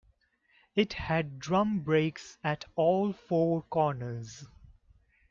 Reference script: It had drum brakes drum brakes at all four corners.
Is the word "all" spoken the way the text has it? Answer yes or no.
yes